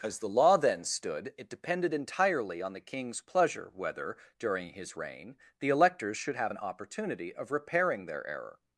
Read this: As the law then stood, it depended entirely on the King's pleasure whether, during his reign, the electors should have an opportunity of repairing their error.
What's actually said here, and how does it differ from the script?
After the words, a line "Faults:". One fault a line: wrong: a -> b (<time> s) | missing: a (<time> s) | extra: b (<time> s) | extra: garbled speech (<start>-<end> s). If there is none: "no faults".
As the law then stood, it depended entirely on the King's pleasure whether, during his reign, the electors should have an opportunity of repairing their error.
Faults:
no faults